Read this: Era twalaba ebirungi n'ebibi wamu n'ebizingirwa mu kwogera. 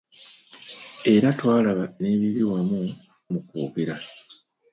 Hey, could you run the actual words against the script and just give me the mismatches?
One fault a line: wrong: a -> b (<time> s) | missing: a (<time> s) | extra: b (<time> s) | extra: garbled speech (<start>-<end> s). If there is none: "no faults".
missing: ebirungi (1.9 s)
missing: n'ebizingirwa (2.8 s)